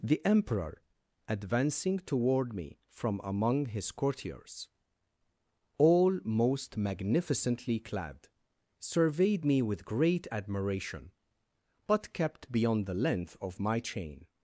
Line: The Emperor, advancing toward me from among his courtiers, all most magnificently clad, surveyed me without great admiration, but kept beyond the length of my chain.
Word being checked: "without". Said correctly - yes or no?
no